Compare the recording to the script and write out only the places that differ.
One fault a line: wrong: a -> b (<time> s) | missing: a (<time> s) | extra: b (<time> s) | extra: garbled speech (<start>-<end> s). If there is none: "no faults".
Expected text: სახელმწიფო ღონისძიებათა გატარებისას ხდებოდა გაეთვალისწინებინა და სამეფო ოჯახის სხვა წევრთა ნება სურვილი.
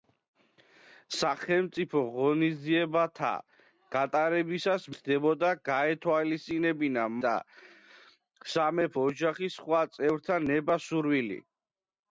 no faults